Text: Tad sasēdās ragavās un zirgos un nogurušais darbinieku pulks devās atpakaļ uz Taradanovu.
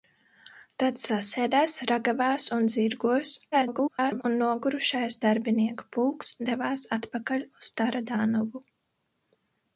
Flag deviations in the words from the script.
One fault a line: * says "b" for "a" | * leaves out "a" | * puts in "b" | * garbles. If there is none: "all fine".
* garbles